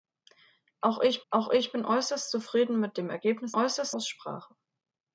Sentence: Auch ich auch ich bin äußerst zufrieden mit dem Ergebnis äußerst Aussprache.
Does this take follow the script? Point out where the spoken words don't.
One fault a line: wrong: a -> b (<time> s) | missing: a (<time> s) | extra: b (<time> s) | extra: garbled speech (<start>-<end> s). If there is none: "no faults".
no faults